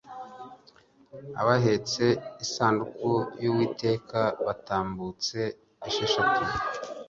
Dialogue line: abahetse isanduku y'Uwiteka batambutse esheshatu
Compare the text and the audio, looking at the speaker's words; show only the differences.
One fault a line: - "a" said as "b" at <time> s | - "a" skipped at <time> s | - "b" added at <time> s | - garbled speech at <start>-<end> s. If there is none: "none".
none